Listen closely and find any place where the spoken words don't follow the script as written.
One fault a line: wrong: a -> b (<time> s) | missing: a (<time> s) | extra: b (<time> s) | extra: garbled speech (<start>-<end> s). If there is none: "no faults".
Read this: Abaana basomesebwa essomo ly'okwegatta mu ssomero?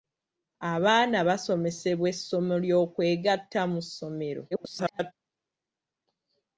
extra: garbled speech (4.5-5.1 s)